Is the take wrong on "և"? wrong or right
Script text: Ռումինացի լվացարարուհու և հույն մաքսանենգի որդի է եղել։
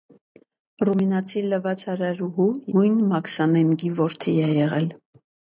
wrong